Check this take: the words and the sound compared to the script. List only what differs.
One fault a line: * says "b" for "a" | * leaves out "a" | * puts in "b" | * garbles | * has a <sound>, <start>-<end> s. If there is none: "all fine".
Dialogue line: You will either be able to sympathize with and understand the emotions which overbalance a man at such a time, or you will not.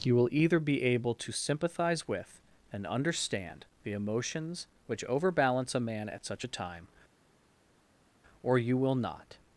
all fine